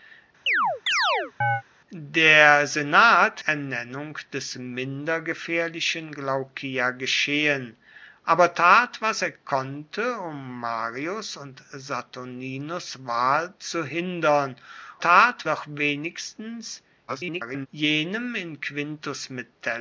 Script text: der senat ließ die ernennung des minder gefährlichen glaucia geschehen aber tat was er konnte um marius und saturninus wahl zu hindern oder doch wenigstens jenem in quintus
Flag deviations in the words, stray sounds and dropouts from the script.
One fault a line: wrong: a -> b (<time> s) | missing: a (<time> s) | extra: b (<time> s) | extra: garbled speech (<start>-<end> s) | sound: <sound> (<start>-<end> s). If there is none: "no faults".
sound: chirp (0.5-1.6 s)
missing: ließ die (3.4 s)
wrong: oder -> tat (15.0 s)
extra: garbled speech (17.1-17.7 s)